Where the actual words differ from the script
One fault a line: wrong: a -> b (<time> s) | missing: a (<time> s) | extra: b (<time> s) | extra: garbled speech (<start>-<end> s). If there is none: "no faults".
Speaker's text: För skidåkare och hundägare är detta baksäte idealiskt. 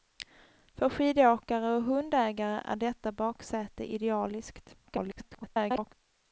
extra: garbled speech (4.8-5.9 s)